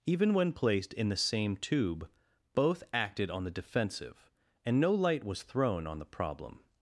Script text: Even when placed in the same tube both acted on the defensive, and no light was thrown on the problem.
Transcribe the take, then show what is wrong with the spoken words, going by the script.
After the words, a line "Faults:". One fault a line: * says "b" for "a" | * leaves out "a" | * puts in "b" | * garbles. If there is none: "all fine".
Even when placed in the same tube both acted on the defensive, and no light was thrown on the problem.
Faults:
all fine